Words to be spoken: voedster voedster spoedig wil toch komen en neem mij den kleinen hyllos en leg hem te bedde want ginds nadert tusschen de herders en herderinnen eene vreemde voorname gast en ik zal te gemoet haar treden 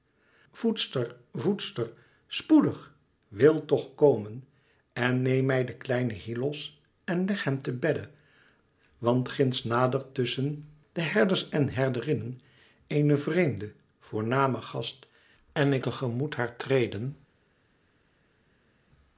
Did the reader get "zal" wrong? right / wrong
wrong